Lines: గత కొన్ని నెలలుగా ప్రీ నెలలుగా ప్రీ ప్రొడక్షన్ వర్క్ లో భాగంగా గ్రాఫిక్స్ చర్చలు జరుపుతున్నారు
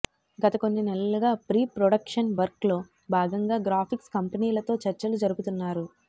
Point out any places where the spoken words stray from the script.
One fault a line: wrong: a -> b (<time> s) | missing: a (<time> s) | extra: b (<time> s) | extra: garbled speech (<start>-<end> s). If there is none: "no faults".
missing: నెలలుగా ప్రీ (1.6 s)
extra: కంపెనీలతో (4.2 s)